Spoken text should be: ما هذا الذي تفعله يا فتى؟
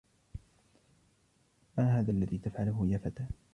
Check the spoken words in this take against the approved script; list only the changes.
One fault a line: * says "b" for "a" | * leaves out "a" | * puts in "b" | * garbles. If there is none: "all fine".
all fine